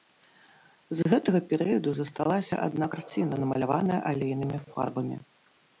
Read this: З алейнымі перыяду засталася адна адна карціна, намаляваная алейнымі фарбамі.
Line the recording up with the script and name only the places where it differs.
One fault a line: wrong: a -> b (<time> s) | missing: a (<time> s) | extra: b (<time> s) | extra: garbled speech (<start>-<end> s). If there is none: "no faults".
wrong: алейнымі -> гэтага (1.1 s)
missing: адна (2.9 s)